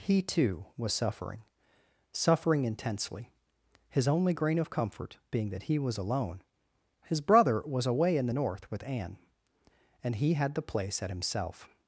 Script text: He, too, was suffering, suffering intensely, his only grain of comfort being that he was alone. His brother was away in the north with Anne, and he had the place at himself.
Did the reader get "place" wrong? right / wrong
right